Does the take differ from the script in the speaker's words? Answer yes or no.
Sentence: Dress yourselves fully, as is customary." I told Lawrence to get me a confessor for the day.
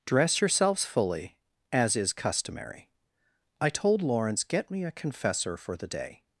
yes